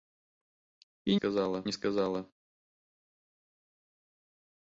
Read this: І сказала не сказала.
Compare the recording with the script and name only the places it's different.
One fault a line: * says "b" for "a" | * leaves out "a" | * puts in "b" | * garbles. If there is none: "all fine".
all fine